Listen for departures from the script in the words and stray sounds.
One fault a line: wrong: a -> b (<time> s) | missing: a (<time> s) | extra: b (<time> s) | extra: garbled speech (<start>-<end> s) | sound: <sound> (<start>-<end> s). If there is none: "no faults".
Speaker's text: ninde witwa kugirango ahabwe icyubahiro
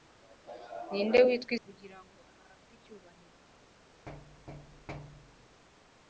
sound: thud (4.1-5.6 s)